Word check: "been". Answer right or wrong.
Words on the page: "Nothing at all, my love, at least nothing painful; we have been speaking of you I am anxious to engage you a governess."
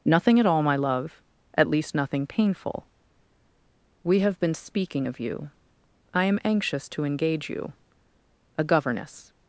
right